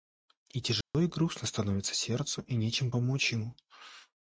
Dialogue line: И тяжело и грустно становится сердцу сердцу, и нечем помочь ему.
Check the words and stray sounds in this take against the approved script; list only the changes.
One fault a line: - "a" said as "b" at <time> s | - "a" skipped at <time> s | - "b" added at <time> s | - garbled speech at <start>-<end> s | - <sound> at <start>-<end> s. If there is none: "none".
- dropout at 0.8-0.9 s
- "сердцу" skipped at 2.4 s